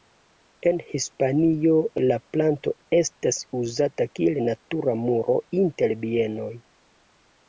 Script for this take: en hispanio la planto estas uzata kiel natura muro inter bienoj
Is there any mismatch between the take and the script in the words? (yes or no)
no